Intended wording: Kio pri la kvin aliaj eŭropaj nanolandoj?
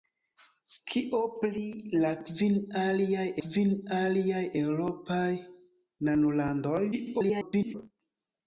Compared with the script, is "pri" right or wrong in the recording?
right